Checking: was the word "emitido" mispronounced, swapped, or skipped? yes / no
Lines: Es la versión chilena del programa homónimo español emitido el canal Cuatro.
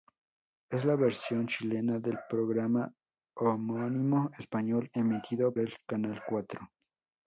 no